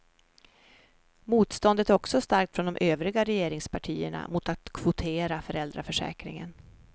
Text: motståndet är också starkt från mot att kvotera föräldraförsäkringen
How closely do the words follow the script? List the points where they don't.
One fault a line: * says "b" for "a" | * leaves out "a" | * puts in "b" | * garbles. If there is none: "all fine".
* puts in "de övriga regeringspartierna"